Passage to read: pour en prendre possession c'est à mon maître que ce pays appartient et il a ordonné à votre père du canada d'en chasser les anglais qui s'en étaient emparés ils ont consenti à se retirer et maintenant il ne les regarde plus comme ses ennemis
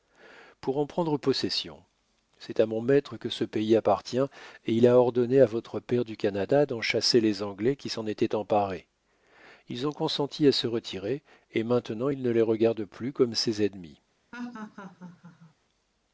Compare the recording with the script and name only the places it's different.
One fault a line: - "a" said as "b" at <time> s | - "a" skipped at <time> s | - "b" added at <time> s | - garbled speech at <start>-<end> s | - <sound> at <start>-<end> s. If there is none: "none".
- laugh at 14.3-15.5 s